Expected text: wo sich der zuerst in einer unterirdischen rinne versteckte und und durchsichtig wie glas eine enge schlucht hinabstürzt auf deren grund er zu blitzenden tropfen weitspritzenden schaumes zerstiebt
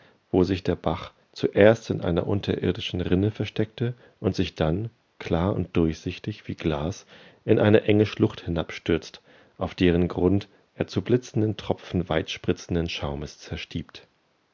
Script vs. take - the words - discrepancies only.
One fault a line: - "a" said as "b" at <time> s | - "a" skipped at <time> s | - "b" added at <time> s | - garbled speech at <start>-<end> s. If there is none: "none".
- "bach" added at 0.8 s
- "sich dann klar" added at 4.3 s
- "in" added at 7.4 s